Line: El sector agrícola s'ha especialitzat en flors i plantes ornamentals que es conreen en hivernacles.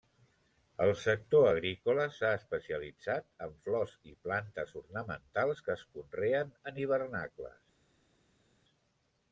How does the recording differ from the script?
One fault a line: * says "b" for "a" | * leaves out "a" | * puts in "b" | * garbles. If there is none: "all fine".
all fine